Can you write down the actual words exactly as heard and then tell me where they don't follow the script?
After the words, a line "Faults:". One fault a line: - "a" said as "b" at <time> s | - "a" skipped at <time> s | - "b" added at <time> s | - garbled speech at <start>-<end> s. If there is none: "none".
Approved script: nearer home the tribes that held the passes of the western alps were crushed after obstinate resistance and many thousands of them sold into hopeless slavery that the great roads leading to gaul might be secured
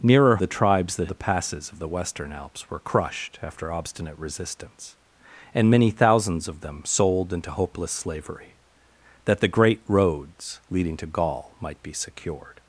nearer the tribes that the passes of the western alps were crushed after obstinate resistance and many thousands of them sold into hopeless slavery that the great roads leading to gaul might be secured
Faults:
- "home" skipped at 0.4 s
- "held" skipped at 1.1 s